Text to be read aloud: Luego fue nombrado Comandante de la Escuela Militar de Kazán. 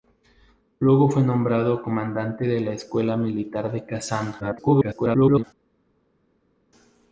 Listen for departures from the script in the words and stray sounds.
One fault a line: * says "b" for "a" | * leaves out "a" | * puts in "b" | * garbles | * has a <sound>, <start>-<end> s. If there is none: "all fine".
* garbles